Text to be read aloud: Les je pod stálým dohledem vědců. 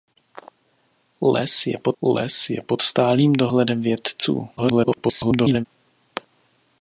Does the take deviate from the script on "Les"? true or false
false